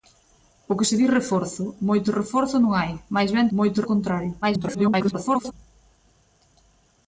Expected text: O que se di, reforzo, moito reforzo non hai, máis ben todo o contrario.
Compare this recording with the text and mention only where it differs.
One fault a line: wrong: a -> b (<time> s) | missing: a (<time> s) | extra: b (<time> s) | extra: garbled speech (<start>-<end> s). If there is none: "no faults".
wrong: todo -> moito (3.6 s)
extra: garbled speech (4.4-5.5 s)